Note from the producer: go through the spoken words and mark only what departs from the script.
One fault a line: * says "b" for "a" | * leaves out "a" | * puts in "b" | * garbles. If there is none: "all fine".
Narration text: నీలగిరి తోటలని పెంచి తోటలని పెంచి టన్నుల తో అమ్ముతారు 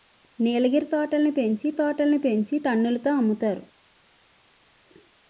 all fine